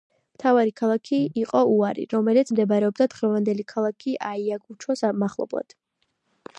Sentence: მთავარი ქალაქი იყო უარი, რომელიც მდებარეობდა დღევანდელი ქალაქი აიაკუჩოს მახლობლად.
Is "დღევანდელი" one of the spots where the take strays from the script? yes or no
no